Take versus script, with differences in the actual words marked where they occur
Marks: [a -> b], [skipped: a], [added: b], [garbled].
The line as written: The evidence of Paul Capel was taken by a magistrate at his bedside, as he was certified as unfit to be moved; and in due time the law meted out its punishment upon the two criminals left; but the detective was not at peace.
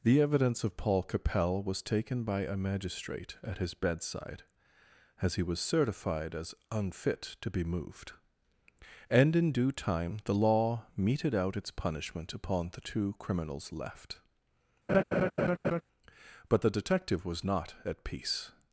The evidence of Paul Capel was taken by a magistrate at his bedside, as he was certified as unfit to be moved; and in due time the law meted out its punishment upon the two criminals left; but the detective was not at peace.